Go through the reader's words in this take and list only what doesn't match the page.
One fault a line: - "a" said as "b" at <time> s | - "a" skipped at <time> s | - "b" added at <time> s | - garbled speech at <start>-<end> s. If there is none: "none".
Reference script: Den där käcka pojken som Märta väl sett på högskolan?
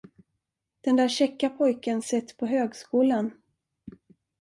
- "som Märta väl" skipped at 2.0 s